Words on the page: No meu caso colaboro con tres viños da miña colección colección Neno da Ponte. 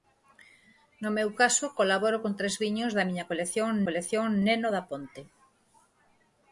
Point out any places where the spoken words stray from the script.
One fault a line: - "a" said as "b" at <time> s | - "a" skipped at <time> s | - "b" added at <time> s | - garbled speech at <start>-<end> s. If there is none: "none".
none